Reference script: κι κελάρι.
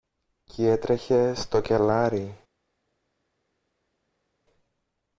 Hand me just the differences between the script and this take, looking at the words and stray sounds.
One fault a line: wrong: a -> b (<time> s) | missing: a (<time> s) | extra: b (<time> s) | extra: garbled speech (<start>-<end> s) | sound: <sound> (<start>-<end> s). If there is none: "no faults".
extra: έτρεχε στο (0.7 s)